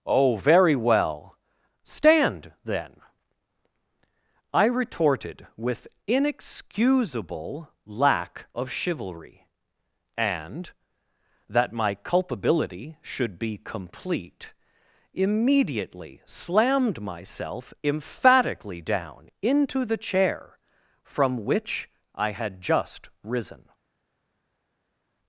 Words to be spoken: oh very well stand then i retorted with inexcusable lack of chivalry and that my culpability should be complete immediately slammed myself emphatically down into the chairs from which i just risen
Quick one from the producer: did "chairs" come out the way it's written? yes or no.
no